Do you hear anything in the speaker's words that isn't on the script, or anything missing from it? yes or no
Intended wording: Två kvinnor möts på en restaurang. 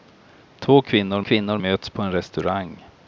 yes